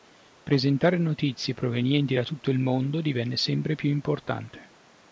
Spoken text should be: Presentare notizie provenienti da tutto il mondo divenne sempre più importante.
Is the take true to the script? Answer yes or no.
yes